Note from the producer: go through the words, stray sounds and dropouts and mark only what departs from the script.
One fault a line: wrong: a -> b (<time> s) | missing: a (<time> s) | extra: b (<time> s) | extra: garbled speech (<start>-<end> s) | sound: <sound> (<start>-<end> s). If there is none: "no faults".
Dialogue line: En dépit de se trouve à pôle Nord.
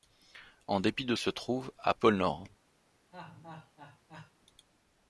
sound: laugh (3.1-4.3 s)